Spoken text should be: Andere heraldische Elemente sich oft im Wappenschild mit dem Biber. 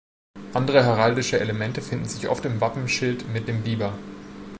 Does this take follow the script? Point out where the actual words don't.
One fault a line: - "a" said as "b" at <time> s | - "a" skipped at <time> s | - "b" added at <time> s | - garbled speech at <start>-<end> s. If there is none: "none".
- "finden" added at 1.8 s